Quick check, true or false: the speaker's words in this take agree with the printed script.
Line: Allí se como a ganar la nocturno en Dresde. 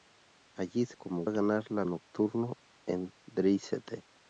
true